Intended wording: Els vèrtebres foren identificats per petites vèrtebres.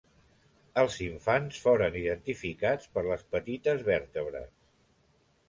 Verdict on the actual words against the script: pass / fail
fail